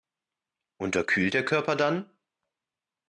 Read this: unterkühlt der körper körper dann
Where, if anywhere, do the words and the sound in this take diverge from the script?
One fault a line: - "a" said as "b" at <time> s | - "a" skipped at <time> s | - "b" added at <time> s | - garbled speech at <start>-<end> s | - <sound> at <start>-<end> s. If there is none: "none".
- "körper" skipped at 1.8 s